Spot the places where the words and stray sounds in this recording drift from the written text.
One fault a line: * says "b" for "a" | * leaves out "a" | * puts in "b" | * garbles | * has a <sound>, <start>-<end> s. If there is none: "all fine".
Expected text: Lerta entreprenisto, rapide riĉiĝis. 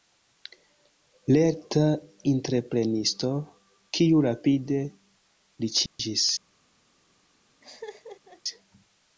* puts in "kiu"
* has a dropout, 5.9-6.0 s
* has a laugh, 7.6-8.4 s